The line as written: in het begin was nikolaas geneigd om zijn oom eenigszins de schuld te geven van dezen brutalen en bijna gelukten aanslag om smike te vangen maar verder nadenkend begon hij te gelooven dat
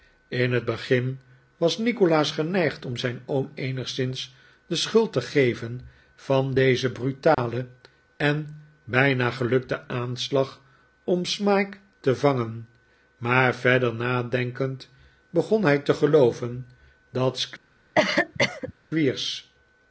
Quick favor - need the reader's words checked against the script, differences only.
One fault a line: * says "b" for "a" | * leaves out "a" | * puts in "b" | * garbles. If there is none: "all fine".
all fine